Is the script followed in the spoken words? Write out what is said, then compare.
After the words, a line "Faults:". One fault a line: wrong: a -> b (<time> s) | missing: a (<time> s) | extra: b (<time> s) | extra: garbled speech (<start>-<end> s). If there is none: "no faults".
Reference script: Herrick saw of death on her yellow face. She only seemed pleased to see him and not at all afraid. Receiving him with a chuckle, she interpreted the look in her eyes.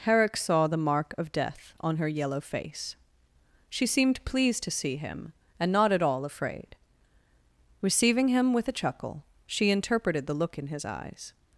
Herrick saw the mark of death on her yellow face. She seemed pleased to see him and not at all afraid. Receiving him with a chuckle, she interpreted the look in his eyes.
Faults:
extra: the mark (0.7 s)
missing: only (3.9 s)
wrong: her -> his (10.7 s)